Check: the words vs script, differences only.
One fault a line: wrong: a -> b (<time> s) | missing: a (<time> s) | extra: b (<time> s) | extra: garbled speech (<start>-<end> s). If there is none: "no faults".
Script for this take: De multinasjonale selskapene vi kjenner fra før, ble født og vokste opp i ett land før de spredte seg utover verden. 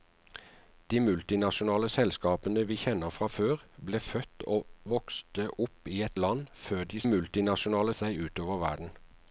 wrong: spredte -> multinasjonale (7.0 s)